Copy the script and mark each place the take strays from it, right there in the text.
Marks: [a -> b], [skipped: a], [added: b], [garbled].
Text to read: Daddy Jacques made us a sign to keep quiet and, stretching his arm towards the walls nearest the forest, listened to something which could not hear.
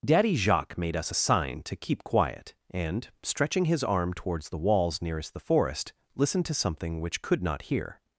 Daddy Jacques made us a sign to keep quiet and, stretching his arm towards the walls nearest the forest, listened to something which could not hear.